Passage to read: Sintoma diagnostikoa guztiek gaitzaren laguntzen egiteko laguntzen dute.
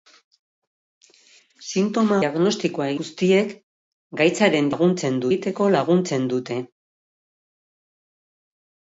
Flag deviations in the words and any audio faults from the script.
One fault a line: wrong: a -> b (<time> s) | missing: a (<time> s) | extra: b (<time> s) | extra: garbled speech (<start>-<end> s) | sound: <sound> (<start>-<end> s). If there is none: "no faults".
no faults